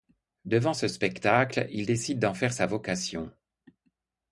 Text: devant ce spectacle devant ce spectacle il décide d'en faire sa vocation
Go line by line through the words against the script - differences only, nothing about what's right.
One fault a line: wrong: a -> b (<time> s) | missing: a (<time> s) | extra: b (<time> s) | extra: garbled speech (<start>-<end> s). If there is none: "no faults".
missing: devant ce spectacle (1.7 s)